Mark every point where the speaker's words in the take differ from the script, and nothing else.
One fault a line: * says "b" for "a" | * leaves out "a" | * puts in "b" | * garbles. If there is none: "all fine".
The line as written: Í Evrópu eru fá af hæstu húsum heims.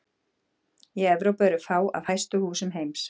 all fine